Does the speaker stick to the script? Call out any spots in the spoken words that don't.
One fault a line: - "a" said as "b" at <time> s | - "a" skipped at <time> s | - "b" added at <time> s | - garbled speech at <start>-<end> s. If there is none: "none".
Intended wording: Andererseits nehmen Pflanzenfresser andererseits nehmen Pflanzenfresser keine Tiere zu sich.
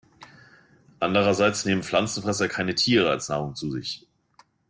- "andererseits nehmen Pflanzenfresser keine Tiere" said as "keine Tiere als Nahrung" at 2.5 s